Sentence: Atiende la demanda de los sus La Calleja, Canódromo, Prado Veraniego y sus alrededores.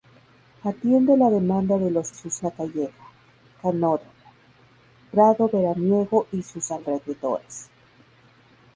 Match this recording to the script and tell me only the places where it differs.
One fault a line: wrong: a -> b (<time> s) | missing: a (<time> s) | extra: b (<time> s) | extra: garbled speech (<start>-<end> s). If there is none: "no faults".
no faults